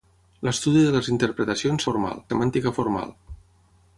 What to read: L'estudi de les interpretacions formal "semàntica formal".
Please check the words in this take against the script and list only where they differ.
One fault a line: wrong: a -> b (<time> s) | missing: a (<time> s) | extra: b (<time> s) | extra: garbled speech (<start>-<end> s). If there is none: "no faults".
no faults